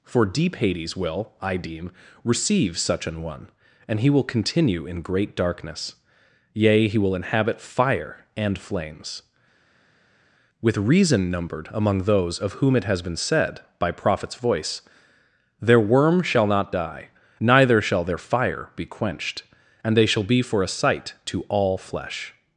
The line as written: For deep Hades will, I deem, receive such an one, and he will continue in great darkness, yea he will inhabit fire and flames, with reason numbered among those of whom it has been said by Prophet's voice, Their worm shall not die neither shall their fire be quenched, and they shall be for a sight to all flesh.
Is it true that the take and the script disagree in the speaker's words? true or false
false